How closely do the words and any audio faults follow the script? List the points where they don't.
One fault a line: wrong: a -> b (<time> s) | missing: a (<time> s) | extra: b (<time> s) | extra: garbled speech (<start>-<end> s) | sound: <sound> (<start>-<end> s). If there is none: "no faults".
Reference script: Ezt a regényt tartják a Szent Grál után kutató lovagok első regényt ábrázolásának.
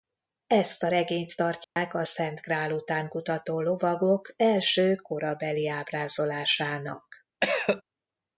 sound: dropout (1.6-1.8 s)
wrong: regényt -> korabeli (4.9 s)
sound: cough (7.4-7.8 s)